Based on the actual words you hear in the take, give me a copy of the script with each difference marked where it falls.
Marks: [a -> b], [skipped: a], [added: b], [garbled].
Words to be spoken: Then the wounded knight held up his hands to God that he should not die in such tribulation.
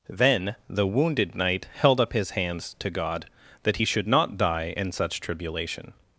Then the wounded knight held up his hands to God that he should not die in such tribulation.